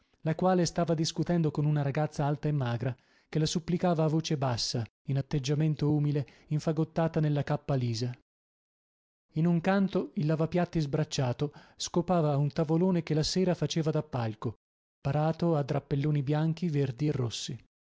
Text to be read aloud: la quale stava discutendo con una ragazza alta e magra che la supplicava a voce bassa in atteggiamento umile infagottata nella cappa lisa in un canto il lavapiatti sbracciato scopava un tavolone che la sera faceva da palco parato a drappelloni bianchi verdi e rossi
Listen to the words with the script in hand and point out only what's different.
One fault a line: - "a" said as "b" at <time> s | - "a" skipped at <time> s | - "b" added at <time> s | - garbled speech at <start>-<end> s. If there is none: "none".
none